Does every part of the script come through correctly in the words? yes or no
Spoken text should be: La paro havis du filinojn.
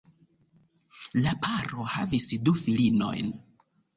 yes